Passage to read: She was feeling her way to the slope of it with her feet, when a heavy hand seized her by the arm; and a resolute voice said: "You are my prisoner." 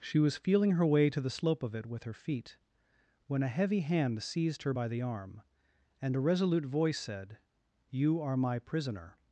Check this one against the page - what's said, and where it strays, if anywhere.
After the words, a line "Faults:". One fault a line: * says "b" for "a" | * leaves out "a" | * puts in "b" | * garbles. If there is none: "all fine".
She was feeling her way to the slope of it with her feet, when a heavy hand seized her by the arm; and a resolute voice said: "You are my prisoner."
Faults:
all fine